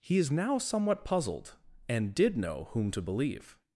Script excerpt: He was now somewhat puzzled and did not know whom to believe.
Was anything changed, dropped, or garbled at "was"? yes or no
yes